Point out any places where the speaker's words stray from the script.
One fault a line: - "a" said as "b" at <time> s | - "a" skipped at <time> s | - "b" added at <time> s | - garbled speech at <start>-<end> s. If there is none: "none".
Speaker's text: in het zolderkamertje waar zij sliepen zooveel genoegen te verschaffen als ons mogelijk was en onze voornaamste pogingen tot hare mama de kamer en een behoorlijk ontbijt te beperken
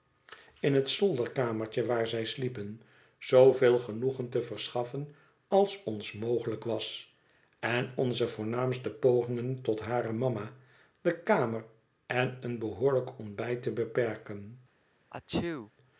none